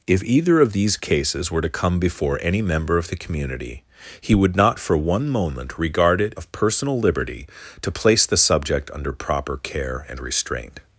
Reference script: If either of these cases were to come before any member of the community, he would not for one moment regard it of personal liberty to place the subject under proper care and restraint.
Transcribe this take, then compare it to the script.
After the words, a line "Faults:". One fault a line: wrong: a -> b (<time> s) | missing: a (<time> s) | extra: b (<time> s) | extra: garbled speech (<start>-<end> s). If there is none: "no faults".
If either of these cases were to come before any member of the community, he would not for one moment regard it of personal liberty to place the subject under proper care and restraint.
Faults:
no faults